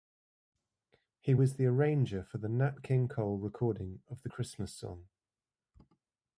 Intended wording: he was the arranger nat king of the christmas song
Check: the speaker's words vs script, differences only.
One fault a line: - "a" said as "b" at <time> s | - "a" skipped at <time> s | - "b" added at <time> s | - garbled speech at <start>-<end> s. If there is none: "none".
- "for the" added at 2.2 s
- "cole recording" added at 3.1 s